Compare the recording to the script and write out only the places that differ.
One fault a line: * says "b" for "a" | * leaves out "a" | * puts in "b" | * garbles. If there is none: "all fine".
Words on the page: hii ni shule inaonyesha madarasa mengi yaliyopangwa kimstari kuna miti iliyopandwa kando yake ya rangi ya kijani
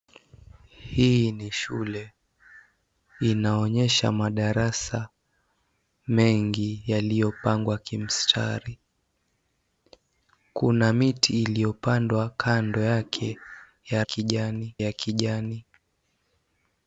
* says "kijani" for "rangi"